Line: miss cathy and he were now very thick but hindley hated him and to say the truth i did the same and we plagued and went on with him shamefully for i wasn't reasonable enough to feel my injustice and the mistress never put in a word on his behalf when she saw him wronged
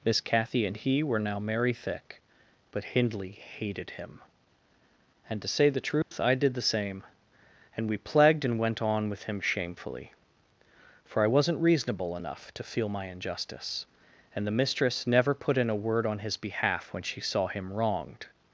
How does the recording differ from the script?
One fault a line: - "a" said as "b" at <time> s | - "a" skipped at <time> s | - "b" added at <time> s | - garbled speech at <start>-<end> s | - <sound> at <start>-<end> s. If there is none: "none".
- "very" said as "merry" at 1.4 s
- dropout at 6.0-6.1 s